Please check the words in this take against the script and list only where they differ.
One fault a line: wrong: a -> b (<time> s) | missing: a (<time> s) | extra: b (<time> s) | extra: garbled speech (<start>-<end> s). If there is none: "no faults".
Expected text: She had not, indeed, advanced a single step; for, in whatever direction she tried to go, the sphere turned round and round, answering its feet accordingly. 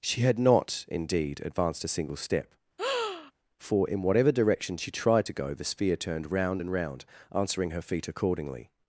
wrong: its -> her (7.7 s)